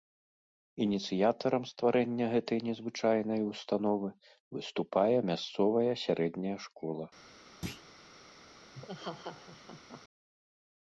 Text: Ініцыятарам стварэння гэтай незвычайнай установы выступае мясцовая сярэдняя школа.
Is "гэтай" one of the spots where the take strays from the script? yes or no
no